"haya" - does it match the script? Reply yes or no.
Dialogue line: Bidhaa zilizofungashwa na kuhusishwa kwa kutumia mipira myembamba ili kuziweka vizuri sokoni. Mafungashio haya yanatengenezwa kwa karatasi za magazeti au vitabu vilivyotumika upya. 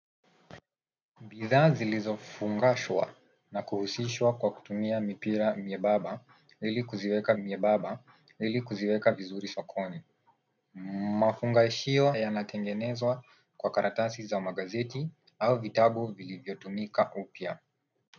no